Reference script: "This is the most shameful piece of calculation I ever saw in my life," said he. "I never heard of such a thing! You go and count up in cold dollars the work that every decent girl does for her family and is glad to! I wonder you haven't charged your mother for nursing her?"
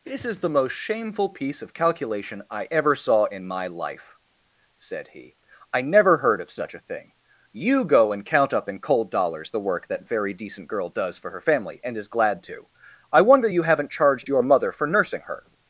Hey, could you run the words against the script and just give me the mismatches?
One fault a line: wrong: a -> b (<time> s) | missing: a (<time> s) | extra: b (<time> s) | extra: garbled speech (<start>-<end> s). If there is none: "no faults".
wrong: every -> very (10.1 s)